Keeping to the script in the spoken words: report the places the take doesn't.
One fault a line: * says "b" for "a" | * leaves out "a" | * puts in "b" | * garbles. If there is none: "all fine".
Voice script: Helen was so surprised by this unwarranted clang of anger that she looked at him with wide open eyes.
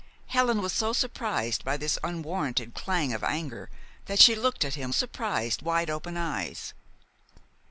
* says "surprised" for "with"